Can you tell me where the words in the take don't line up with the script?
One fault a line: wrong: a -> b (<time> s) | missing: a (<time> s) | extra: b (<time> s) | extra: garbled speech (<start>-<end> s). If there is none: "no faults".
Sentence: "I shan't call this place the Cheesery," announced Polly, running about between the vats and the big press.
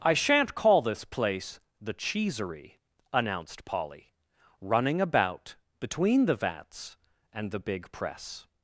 no faults